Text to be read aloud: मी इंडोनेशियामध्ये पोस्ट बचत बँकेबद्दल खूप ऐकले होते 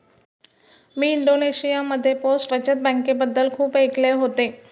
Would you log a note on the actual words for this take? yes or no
no